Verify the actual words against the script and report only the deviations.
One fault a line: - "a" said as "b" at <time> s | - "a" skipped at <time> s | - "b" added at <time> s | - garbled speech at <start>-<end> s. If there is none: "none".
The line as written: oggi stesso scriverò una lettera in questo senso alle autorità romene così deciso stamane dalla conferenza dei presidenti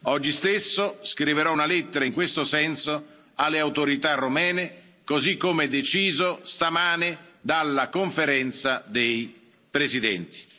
- "come" added at 5.4 s